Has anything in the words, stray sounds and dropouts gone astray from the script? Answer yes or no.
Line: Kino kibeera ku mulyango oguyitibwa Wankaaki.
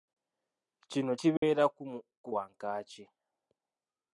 yes